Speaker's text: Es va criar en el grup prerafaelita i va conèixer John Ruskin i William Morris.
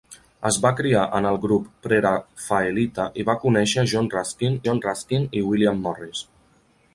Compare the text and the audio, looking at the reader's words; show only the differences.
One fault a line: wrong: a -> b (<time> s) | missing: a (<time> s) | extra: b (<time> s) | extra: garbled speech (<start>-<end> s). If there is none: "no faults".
extra: John Ruskin (4.7 s)